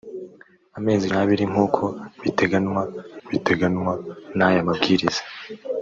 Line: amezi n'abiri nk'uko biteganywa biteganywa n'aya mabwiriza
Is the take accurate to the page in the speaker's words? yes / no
yes